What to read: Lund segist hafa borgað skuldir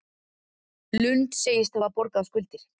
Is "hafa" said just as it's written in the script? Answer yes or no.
yes